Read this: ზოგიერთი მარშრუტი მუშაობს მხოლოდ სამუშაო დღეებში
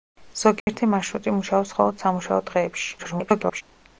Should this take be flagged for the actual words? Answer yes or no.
yes